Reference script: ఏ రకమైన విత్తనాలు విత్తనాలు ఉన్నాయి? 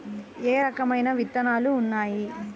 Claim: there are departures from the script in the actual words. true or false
true